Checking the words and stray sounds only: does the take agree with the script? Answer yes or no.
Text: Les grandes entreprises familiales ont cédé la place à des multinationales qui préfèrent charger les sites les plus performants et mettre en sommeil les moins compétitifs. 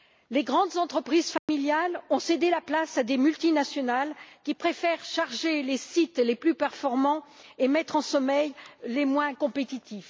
no